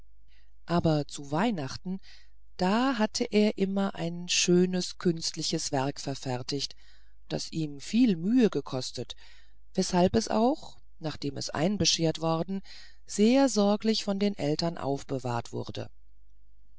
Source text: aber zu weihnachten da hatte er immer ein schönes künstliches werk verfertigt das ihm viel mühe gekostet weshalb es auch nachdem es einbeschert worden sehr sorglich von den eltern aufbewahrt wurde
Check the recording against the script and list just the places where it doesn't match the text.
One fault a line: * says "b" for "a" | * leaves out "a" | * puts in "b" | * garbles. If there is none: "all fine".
all fine